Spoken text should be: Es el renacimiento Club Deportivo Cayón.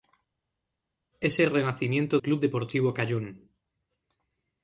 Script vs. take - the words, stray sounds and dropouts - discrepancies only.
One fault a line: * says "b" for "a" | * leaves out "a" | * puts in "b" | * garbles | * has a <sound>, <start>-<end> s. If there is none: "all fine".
all fine